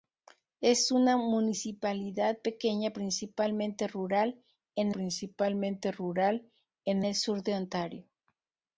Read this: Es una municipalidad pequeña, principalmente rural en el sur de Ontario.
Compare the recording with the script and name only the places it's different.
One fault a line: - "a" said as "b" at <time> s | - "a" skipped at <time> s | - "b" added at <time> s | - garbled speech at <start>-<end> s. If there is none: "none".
- "principalmente rural en" added at 4.9 s